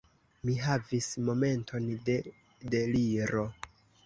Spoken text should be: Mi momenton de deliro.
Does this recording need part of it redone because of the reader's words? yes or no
yes